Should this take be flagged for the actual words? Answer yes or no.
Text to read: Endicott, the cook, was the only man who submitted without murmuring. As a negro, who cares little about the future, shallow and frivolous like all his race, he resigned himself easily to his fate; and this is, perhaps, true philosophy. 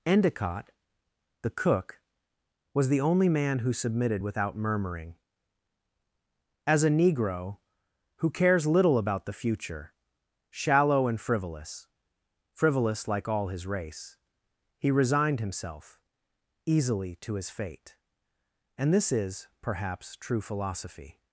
yes